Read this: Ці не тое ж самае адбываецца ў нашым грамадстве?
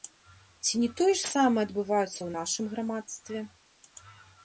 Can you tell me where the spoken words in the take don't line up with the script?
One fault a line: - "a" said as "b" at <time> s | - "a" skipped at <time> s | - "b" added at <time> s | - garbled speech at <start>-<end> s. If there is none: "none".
none